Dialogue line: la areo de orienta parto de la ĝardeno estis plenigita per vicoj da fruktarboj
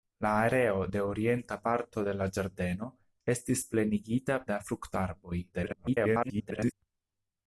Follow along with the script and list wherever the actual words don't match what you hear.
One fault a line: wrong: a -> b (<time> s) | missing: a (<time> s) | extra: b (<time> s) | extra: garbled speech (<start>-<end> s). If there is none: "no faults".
missing: per vicoj (4.4 s)
extra: garbled speech (5.5-6.7 s)